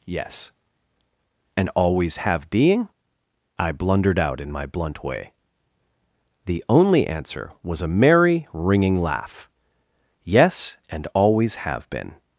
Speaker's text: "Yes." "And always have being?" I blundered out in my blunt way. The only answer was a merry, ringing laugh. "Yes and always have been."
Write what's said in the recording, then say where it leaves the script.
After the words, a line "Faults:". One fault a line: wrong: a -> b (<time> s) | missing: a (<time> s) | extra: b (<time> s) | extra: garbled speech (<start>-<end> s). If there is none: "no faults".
"Yes." "And always have being?" I blundered out in my blunt way. The only answer was a merry, ringing laugh. "Yes and always have been."
Faults:
no faults